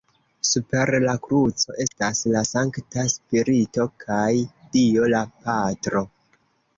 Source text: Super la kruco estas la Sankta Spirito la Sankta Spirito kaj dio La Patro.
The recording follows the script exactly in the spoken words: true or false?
false